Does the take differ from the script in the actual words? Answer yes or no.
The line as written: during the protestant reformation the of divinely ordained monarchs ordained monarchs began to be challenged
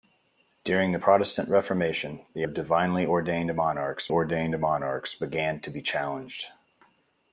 no